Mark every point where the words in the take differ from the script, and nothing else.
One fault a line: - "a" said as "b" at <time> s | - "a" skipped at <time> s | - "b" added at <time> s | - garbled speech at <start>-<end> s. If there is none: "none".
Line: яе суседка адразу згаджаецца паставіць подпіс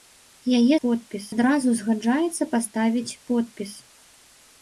- "суседка" said as "подпіс" at 0.8 s